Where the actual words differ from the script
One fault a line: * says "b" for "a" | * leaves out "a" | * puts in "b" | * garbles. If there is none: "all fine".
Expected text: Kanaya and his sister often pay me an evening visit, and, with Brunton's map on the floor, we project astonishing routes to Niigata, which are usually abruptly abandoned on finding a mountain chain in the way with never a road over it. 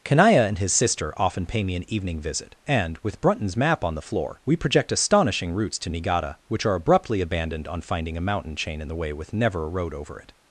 * leaves out "usually"